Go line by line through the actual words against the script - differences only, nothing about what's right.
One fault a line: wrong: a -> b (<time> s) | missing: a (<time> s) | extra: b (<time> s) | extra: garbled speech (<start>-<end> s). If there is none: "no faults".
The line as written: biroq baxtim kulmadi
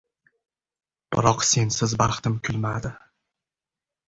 extra: sensiz (1.5 s)